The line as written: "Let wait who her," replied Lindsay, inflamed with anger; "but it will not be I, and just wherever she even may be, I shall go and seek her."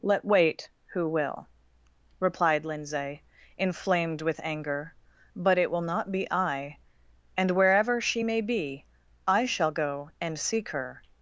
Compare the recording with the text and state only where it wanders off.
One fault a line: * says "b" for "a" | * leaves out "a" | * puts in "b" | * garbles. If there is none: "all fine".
* says "will" for "her"
* leaves out "just"
* leaves out "even"